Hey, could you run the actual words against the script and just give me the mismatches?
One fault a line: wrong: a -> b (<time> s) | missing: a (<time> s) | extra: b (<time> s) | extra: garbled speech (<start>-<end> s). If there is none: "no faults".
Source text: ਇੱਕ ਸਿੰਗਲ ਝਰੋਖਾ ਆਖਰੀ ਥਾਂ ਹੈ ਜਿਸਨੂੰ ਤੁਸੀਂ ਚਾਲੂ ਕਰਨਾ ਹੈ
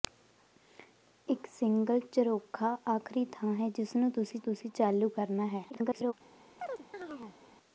extra: ਤੁਸੀਂ (4.4 s)
extra: garbled speech (5.7-6.1 s)